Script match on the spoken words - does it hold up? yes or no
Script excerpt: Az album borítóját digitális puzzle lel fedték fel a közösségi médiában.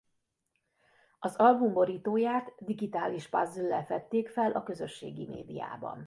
yes